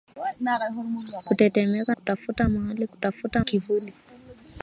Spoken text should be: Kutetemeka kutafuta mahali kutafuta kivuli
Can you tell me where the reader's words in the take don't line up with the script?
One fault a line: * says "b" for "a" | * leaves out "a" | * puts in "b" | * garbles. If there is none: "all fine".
all fine